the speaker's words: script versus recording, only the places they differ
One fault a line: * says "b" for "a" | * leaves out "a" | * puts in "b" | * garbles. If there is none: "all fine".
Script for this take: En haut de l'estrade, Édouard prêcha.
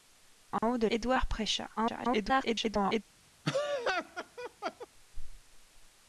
* leaves out "l'estrade"
* garbles